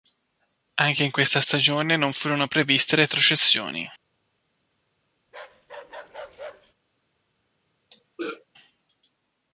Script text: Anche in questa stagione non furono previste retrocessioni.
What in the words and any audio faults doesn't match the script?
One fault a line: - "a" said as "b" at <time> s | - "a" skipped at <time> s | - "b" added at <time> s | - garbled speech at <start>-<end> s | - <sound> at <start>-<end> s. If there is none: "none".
- bark at 5.3-6.7 s
- throat clearing at 7.9-8.4 s